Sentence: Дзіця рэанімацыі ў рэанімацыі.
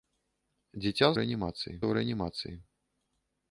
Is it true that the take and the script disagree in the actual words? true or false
false